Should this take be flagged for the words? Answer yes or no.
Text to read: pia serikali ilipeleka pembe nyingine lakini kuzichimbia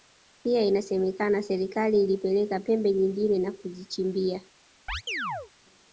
yes